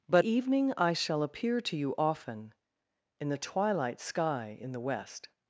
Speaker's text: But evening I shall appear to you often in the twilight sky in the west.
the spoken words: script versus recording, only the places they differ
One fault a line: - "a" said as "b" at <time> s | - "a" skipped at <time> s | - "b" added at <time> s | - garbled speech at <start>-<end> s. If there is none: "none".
none